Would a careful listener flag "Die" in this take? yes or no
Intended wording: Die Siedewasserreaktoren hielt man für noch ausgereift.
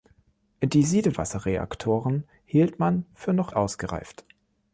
no